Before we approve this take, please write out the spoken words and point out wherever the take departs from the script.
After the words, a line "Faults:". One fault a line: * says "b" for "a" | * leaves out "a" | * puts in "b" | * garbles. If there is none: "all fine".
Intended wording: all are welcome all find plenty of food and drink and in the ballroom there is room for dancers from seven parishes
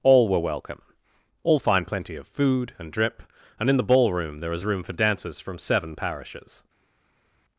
all were welcome all find plenty of food and drip and in the ballroom there is room for dancers from seven parishes
Faults:
* says "were" for "are"
* says "drip" for "drink"